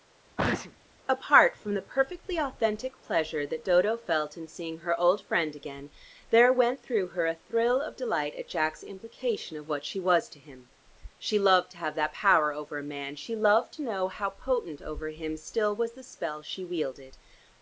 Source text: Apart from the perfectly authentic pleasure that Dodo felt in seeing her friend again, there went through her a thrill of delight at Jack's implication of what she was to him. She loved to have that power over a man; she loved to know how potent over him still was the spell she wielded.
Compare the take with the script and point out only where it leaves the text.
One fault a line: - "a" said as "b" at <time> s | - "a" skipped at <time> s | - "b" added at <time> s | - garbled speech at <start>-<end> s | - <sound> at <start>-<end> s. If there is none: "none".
- sneeze at 0.4-0.8 s
- "old" added at 5.0 s